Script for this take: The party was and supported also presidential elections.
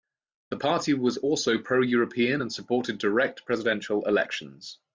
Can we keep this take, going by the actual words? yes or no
no